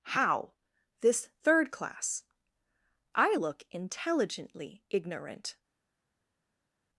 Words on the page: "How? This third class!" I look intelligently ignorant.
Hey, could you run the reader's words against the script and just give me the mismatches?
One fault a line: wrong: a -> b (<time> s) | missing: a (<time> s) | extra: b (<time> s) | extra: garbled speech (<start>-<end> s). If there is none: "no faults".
no faults